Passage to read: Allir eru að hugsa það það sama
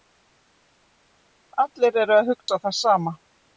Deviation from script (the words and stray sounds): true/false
true